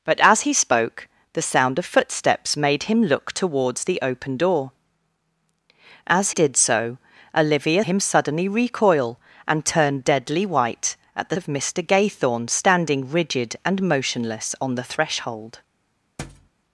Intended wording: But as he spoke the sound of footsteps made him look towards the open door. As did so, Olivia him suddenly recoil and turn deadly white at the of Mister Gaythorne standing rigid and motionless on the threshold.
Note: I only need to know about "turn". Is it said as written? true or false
true